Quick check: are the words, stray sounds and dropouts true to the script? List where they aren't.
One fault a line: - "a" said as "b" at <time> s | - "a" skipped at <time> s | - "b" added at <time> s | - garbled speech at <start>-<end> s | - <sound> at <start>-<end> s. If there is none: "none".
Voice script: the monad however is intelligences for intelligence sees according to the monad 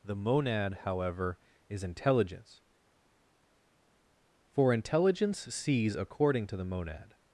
- "intelligences" said as "intelligence" at 1.8 s